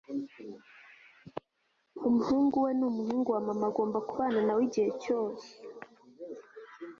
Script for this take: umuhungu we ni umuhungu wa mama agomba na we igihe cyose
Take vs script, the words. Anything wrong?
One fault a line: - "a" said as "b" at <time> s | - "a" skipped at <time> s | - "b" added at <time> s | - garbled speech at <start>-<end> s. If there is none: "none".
- "kubana" added at 4.1 s